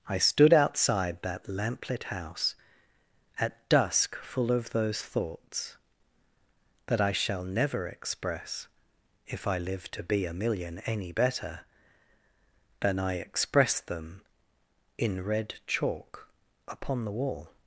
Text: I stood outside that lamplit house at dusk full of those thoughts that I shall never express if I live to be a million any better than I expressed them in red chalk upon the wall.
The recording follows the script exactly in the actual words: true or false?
true